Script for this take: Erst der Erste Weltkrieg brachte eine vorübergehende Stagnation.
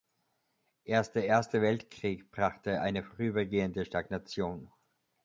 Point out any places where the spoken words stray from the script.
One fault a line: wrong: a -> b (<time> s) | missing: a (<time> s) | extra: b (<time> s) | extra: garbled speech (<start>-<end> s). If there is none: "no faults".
no faults